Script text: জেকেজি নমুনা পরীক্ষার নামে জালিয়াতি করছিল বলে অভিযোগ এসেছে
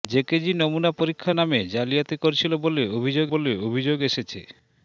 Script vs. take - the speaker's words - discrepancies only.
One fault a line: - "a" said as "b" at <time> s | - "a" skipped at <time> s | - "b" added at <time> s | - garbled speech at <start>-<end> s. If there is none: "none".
- "বলে অভিযোগ" added at 3.3 s